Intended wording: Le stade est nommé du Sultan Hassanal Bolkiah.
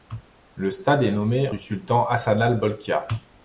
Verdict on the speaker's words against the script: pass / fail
pass